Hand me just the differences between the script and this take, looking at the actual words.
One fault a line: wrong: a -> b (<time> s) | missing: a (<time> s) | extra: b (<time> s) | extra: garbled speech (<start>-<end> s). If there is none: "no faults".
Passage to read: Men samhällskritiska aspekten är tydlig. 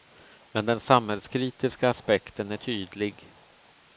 extra: den (0.7 s)